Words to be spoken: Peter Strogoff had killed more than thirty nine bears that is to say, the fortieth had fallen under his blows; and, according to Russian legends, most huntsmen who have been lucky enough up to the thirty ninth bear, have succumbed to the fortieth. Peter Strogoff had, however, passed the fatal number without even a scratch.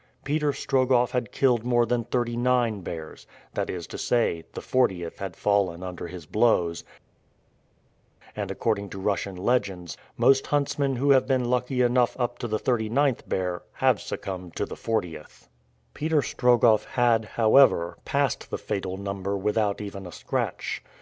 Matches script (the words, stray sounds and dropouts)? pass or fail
pass